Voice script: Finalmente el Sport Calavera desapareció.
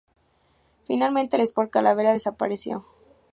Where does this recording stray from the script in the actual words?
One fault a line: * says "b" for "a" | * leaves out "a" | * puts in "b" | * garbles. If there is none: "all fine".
all fine